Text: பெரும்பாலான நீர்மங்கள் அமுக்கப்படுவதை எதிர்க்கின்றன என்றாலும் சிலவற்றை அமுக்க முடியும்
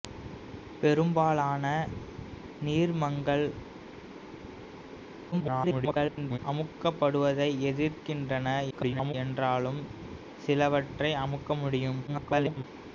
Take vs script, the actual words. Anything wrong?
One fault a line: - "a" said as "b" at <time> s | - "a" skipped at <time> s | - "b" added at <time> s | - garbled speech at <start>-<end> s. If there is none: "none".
- garbled speech at 5.3-6.4 s
- garbled speech at 8.7-9.1 s
- garbled speech at 12.1-12.6 s